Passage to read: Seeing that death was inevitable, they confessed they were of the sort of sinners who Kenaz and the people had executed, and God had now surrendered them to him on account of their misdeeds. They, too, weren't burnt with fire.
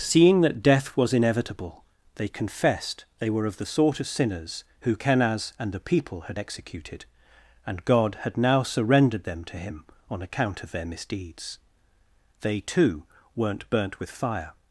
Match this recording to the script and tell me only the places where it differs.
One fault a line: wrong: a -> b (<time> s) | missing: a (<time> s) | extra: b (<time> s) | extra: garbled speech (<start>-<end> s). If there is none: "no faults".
no faults